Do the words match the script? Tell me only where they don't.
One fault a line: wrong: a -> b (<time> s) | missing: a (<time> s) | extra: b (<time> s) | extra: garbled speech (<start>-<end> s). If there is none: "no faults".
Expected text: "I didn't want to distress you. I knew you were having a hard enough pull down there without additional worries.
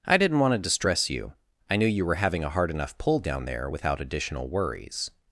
no faults